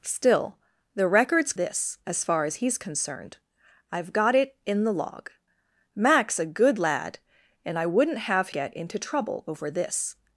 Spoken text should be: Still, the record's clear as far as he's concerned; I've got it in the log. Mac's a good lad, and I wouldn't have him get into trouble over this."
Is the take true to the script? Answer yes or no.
no